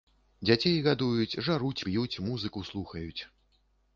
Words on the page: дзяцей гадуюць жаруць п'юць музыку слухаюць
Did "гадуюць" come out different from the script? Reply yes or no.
no